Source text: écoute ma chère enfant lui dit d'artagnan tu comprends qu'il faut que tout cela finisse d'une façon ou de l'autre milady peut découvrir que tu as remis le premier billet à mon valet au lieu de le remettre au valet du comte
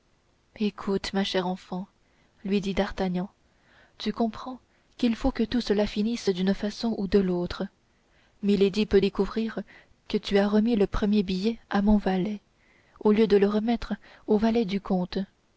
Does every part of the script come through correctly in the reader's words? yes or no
yes